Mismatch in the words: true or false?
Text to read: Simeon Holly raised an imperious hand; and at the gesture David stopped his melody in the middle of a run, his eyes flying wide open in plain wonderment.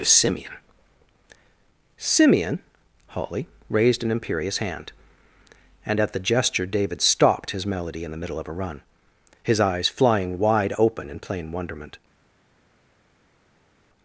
true